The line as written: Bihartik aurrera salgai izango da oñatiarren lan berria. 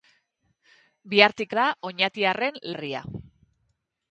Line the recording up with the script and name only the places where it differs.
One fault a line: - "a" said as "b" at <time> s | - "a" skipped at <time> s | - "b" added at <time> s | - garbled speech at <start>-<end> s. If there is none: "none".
- "aurrera salgai izango" skipped at 1.5 s
- "lan" skipped at 2.6 s